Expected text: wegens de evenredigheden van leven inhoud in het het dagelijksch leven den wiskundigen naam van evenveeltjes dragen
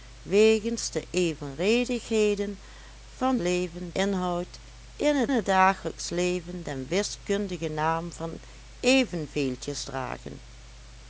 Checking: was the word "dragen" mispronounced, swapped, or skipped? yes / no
no